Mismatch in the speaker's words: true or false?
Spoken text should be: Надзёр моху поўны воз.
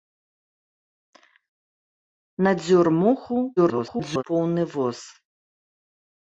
true